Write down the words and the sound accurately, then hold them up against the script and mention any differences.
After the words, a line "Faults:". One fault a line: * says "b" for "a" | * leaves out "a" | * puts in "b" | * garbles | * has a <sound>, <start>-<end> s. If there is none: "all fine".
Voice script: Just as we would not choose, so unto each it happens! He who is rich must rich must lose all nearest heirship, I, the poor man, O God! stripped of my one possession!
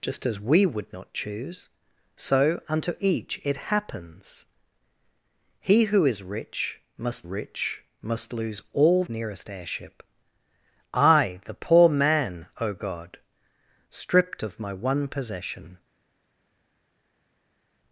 Just as we would not choose, so unto each it happens! He who is rich must rich must lose all nearest heirship, I, the poor man, O God! stripped of my one possession!
Faults:
all fine